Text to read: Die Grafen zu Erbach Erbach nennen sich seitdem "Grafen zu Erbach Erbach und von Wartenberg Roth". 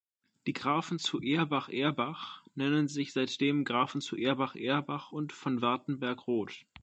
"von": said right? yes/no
yes